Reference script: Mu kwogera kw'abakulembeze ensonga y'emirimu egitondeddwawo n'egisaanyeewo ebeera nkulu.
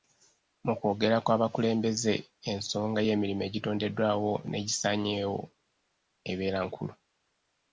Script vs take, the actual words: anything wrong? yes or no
no